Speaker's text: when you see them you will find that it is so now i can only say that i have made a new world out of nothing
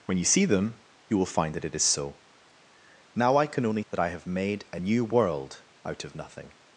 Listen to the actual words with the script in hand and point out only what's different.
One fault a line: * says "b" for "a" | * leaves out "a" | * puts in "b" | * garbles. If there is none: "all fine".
* leaves out "say"